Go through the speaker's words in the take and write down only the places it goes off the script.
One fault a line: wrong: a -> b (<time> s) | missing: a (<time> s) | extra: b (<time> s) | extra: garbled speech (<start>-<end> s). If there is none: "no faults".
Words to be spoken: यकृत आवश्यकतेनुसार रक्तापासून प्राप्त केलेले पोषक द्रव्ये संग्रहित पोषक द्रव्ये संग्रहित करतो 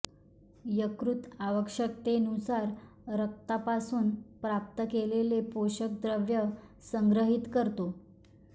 missing: पोषक द्रव्ये संग्रहित (7.5 s)